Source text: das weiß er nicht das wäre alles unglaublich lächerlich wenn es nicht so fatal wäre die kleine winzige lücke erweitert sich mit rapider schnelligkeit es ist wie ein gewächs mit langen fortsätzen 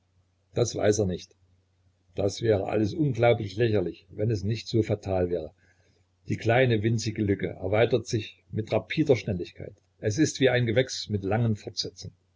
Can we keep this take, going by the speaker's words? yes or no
yes